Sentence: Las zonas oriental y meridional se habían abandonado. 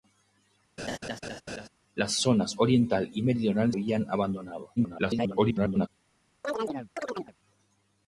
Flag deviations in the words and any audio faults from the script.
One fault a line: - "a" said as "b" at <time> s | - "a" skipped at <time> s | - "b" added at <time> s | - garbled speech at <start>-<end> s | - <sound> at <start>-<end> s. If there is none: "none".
- laugh at 0.8-1.7 s
- "se" skipped at 3.7 s
- garbled speech at 4.8-5.9 s
- chirp at 6.4-7.3 s